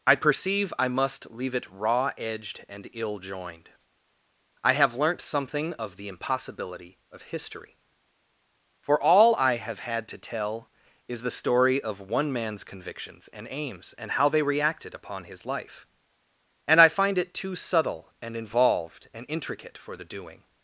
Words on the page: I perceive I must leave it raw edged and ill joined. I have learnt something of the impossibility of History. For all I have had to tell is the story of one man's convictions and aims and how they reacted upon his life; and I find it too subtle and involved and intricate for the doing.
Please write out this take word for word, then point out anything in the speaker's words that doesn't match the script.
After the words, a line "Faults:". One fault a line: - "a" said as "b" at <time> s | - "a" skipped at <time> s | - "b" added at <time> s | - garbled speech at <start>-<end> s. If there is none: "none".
I perceive I must leave it raw edged and ill joined. I have learnt something of the impossibility of History. For all I have had to tell is the story of one man's convictions and aims and how they reacted upon his life; and I find it too subtle and involved and intricate for the doing.
Faults:
none